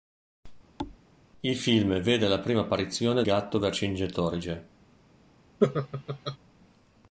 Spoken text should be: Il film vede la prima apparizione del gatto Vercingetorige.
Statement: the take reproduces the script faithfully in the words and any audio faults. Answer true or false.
false